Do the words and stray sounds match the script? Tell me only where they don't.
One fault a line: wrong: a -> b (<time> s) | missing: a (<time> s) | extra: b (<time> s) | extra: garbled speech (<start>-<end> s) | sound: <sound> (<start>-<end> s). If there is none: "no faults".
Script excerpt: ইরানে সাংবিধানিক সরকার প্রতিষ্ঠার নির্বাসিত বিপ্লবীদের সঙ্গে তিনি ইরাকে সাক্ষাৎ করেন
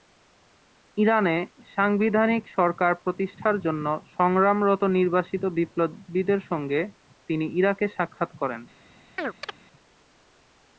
extra: জন্য সংগ্রামরত (3.6 s)
sound: chirp (9.2-9.6 s)